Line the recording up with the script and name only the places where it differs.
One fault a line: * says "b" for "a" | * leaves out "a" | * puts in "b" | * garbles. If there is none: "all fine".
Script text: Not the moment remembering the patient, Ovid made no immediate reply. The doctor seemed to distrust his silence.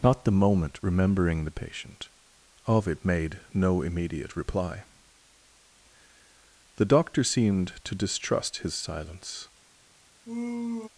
all fine